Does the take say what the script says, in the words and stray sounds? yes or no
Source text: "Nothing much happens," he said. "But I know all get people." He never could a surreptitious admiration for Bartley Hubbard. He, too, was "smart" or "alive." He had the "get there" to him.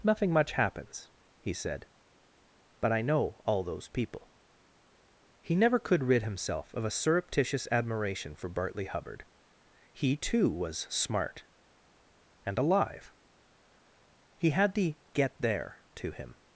no